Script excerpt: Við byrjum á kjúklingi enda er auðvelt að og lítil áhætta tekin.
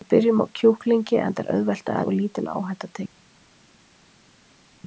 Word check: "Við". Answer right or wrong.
right